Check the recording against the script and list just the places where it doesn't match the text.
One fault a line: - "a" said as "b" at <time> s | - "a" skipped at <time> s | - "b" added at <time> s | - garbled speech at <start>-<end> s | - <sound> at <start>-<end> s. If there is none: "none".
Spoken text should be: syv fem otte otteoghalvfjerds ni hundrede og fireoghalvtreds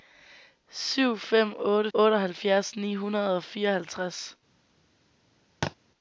- thud at 5.6-5.8 s